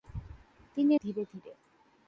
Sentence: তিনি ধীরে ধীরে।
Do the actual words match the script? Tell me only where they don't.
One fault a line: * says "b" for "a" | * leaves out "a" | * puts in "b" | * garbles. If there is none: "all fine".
all fine